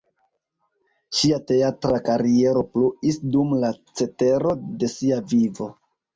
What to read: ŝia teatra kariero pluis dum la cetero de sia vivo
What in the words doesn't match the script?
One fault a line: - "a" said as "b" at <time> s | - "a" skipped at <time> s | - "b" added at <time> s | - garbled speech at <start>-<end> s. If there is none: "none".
none